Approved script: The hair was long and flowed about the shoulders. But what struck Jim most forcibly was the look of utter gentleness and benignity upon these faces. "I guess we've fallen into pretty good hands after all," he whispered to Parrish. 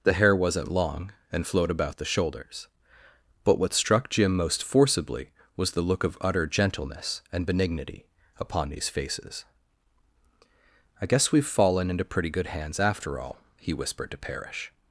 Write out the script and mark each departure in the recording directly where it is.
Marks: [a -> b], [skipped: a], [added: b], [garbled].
The hair [was -> wasn't] long and flowed about the shoulders. But what struck Jim most forcibly was the look of utter gentleness and benignity upon these faces. "I guess we've fallen into pretty good hands after all," he whispered to Parrish.